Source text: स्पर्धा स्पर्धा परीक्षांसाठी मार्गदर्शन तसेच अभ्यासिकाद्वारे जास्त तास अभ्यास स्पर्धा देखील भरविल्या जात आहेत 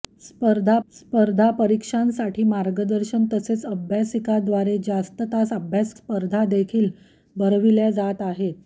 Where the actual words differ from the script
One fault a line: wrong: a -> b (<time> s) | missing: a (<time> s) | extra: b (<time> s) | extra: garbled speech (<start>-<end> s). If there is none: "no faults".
no faults